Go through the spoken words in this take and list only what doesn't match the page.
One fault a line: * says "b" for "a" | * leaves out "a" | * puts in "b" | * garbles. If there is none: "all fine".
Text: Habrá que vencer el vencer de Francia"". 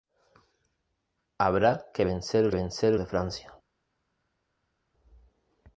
all fine